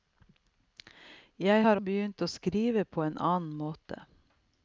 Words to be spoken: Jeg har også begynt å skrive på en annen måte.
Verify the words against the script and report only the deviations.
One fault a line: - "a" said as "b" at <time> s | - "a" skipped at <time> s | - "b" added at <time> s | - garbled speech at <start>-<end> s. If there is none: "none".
- "også" skipped at 1.8 s